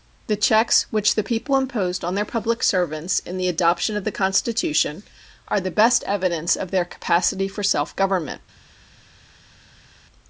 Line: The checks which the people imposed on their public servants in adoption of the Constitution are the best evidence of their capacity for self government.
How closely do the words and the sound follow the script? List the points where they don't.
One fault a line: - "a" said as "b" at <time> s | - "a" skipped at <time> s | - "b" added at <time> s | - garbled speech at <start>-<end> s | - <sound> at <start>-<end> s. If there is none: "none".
- "the" added at 3.4 s